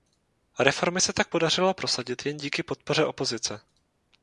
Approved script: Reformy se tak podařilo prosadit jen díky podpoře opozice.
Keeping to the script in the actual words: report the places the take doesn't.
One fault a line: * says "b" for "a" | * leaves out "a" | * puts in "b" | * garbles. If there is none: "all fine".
all fine